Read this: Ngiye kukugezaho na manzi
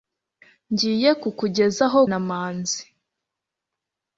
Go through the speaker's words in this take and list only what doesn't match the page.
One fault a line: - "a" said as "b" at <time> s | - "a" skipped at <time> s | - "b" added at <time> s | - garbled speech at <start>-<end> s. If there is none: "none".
none